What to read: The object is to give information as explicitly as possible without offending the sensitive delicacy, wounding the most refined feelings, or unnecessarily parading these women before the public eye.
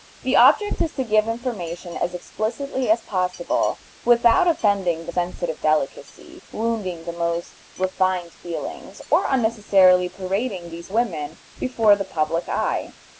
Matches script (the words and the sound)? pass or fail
pass